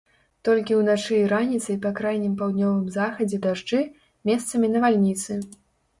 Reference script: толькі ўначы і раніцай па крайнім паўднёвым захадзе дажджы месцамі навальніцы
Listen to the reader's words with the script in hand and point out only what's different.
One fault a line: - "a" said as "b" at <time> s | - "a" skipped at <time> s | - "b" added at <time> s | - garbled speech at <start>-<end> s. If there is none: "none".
none